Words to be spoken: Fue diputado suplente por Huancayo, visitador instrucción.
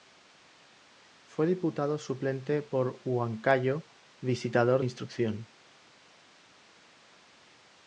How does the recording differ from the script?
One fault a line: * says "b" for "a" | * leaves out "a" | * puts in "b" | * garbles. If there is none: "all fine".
all fine